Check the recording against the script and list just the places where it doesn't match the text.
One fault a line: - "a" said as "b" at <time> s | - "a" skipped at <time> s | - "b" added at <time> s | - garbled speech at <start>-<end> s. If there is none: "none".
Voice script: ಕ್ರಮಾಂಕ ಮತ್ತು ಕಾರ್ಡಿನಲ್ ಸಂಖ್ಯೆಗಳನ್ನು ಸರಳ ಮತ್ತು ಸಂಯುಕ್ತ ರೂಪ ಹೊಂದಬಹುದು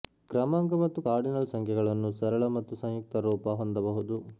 none